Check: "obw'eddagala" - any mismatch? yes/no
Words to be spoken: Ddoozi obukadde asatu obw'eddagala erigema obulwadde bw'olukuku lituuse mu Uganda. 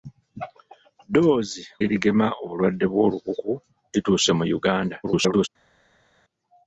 yes